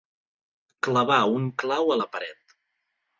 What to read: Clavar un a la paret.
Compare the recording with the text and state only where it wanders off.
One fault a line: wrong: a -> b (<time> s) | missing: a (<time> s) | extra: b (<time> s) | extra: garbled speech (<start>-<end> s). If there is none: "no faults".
extra: clau (1.6 s)